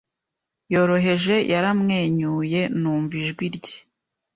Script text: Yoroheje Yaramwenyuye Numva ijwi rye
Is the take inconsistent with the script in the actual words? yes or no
no